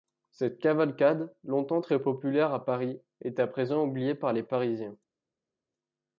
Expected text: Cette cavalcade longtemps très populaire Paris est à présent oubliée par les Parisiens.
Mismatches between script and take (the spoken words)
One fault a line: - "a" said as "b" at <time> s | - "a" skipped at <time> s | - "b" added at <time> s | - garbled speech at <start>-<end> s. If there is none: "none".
- "à" added at 2.5 s